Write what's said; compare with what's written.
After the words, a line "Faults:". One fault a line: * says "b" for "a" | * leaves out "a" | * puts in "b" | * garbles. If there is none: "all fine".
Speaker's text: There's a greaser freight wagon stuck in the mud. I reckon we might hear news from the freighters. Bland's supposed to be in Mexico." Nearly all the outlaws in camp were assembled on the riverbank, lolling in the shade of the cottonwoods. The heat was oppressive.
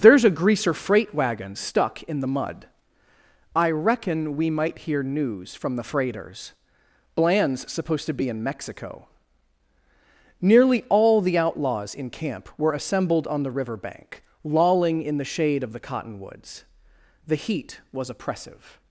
There's a greaser freight wagon stuck in the mud. I reckon we might hear news from the freighters. Bland's supposed to be in Mexico." Nearly all the outlaws in camp were assembled on the riverbank, lolling in the shade of the cottonwoods. The heat was oppressive.
Faults:
all fine